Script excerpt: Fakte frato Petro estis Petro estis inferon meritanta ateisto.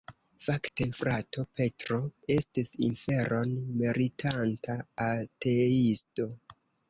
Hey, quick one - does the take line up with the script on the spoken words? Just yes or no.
no